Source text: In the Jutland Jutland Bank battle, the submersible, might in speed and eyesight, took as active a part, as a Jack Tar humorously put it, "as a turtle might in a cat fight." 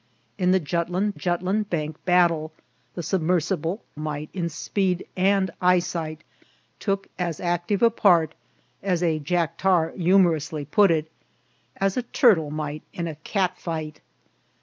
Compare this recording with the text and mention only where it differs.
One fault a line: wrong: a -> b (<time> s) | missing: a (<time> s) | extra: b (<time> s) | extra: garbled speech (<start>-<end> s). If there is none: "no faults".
no faults